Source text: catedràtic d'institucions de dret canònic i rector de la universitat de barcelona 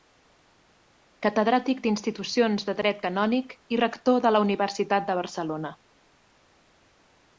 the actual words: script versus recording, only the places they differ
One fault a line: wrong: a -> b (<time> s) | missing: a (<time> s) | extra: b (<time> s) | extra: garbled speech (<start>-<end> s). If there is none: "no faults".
no faults